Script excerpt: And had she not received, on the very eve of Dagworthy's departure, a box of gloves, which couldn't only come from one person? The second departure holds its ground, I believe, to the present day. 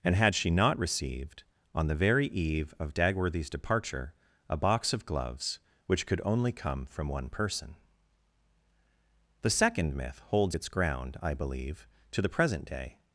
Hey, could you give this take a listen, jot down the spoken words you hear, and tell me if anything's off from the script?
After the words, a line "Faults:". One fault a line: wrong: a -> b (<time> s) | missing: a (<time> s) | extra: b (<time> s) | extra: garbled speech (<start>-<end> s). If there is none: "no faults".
And had she not received, on the very eve of Dagworthy's departure, a box of gloves, which could only come from one person? The second myth holds its ground, I believe, to the present day.
Faults:
wrong: couldn't -> could (6.1 s)
wrong: departure -> myth (9.9 s)